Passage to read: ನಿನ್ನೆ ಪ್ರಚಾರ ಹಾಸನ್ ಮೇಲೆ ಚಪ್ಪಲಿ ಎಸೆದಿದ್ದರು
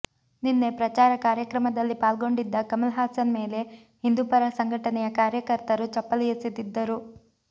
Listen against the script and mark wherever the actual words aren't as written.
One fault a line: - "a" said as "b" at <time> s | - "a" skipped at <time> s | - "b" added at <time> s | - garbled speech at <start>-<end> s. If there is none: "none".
- "ಕಾರ್ಯಕ್ರಮದಲ್ಲಿ ಪಾಲ್ಗೊಂಡಿದ್ದ ಕಮಲ್" added at 1.2 s
- "ಹಿಂದೂಪರ ಸಂಘಟನೆಯ ಕಾರ್ಯಕರ್ತರು" added at 4.0 s